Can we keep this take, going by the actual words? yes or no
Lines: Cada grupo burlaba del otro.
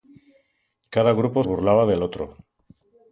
yes